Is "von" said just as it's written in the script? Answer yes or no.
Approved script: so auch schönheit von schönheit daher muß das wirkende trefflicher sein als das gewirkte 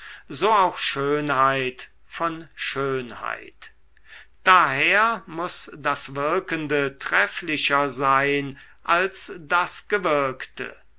yes